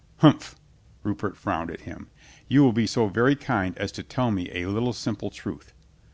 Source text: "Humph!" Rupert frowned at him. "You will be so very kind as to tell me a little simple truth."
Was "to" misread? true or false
false